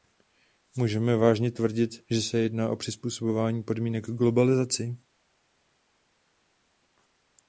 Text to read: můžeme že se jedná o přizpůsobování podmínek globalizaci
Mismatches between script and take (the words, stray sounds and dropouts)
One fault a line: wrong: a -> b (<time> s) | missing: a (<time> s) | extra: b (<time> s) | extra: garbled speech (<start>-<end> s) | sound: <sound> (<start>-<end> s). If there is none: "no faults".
extra: vážně tvrdit (1.1 s)